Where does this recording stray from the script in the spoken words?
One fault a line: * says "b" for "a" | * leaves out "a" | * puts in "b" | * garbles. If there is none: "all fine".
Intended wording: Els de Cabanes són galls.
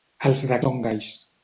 * leaves out "Cabanes"